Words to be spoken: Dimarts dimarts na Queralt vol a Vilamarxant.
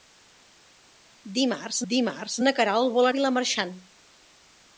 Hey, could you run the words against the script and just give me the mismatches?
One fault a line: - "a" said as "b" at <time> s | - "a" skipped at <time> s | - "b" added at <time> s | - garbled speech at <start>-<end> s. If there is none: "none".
none